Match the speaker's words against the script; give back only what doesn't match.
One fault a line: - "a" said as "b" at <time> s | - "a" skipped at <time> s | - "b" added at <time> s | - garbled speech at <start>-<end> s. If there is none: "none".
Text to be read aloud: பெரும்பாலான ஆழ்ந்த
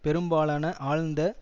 none